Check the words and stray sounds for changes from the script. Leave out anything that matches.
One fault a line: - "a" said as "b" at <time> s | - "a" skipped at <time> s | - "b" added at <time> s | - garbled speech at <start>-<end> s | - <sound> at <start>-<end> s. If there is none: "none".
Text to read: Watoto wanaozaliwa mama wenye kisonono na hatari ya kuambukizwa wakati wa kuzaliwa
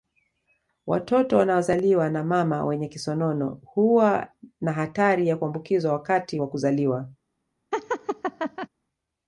- "na" added at 2.1 s
- "huwa" added at 3.6 s
- laugh at 7.7-8.7 s